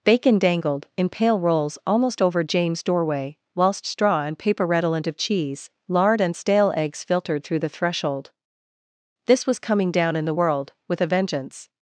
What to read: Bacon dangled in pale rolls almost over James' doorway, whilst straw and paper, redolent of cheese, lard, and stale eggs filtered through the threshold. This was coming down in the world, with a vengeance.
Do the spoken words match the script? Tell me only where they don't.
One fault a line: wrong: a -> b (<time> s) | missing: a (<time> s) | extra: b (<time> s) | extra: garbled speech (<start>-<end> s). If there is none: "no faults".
no faults